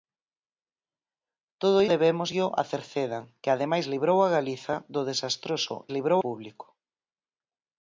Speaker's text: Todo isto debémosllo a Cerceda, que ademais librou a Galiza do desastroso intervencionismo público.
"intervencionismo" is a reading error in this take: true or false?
true